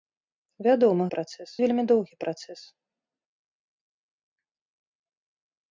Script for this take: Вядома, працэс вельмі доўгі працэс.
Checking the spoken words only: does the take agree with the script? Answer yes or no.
yes